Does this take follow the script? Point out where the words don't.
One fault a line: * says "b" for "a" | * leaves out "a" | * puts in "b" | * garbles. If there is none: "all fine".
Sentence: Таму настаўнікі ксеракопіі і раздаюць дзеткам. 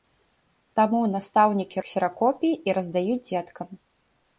all fine